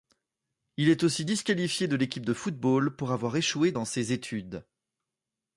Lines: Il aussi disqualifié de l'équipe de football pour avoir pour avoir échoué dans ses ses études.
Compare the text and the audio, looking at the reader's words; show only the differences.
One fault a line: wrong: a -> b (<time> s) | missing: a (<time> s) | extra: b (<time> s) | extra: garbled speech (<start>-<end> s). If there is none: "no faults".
extra: est (0.9 s)
missing: pour avoir (3.3 s)
missing: ses (4.1 s)